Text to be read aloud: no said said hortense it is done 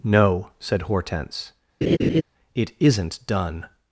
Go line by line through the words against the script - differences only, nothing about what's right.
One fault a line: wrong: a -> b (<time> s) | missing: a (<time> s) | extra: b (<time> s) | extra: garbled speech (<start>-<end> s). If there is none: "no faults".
missing: said (0.8 s)
wrong: is -> isn't (2.8 s)